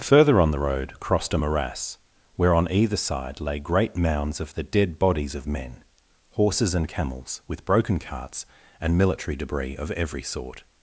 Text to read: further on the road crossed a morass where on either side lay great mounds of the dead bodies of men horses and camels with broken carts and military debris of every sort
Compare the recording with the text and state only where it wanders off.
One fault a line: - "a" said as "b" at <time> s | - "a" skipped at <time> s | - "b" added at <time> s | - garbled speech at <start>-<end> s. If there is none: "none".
none